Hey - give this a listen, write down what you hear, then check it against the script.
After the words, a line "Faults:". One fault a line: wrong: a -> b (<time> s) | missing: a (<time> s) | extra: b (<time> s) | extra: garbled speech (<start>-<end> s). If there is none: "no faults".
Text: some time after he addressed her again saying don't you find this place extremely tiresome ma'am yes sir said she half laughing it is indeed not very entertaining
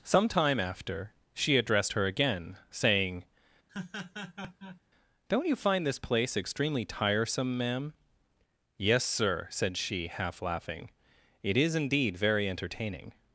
some time after she addressed her again saying don't you find this place extremely tiresome ma'am yes sir said she half laughing it is indeed very entertaining
Faults:
wrong: he -> she (1.3 s)
missing: not (12.2 s)